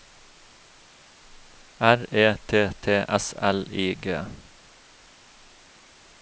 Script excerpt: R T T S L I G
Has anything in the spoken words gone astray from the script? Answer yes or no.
yes